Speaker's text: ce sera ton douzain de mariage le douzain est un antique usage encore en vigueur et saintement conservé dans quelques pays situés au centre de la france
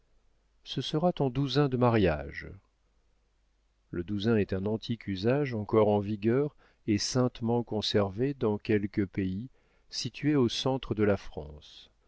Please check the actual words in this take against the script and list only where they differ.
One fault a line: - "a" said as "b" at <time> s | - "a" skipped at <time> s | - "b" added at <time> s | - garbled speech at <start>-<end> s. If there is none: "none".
none